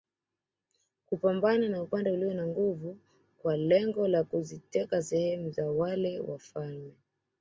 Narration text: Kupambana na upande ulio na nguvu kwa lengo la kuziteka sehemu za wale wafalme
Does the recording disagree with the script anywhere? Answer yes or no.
no